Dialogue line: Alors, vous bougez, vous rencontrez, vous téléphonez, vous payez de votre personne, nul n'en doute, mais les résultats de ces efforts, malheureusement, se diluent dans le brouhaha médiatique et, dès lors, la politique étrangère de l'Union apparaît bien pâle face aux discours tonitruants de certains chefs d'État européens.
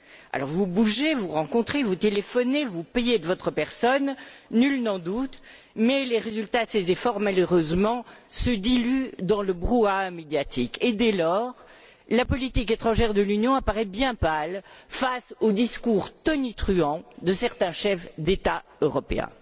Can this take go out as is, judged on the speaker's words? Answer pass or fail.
pass